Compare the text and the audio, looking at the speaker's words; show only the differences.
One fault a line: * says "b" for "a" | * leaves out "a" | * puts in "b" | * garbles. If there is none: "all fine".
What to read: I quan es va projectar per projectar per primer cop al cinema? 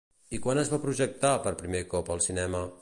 * leaves out "projectar per"